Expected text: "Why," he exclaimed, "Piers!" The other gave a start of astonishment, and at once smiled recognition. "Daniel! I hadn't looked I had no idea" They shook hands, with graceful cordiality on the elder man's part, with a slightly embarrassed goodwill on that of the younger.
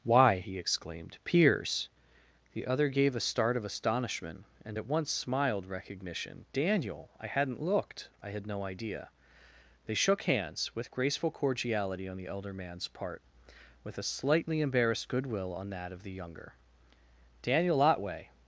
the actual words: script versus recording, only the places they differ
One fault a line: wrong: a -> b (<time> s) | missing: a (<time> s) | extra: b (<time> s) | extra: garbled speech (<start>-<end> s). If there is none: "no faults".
extra: Daniel Otway (17.4 s)